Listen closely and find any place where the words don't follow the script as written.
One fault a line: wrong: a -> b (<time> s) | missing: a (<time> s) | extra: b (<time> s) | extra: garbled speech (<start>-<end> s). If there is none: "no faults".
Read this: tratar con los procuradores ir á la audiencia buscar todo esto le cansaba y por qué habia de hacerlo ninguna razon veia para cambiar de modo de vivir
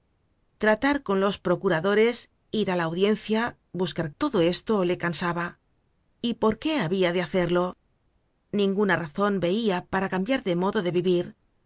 no faults